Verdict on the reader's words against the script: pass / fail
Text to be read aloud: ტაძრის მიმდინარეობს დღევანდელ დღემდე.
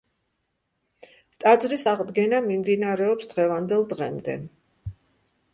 fail